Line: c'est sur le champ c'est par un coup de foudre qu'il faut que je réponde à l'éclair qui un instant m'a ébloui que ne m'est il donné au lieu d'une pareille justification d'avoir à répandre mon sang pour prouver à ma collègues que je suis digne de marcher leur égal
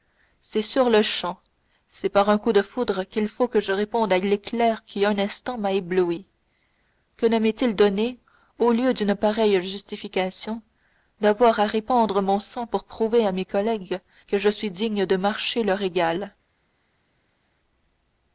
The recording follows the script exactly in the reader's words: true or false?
false